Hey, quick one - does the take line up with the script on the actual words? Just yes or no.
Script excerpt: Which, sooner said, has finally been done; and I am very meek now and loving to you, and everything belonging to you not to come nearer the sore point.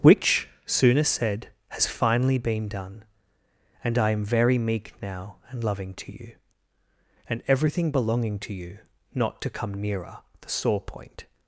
yes